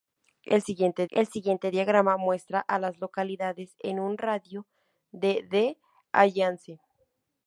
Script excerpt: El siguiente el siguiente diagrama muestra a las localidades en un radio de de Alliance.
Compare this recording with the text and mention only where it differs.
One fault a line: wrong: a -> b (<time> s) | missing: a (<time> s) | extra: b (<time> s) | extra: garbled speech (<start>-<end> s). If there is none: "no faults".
no faults